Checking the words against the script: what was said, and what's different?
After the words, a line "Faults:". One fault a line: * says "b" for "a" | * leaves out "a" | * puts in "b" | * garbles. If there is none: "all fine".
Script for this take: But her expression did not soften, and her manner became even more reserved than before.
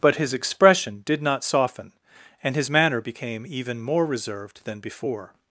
But his expression did not soften, and his manner became even more reserved than before.
Faults:
* says "his" for "her"
* says "his" for "her"